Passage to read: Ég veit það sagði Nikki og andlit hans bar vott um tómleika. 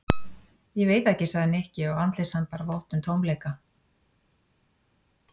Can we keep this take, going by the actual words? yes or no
no